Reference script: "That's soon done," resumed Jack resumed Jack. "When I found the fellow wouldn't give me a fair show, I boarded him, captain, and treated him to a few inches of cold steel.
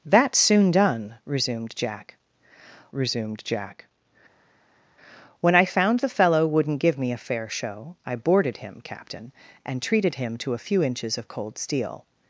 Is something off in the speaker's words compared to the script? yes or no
no